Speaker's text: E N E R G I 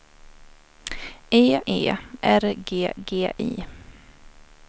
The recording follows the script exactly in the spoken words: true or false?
false